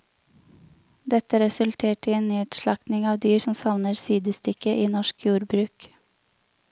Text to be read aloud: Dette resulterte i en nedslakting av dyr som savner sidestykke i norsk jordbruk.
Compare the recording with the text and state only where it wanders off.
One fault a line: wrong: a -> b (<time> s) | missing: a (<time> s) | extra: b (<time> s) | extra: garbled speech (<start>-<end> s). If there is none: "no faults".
no faults